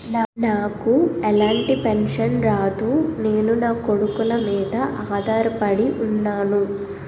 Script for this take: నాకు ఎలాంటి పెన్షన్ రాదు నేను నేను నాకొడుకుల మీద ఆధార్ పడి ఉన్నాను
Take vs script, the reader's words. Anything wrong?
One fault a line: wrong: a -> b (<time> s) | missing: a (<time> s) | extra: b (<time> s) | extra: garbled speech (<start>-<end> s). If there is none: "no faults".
missing: నేను (3.5 s)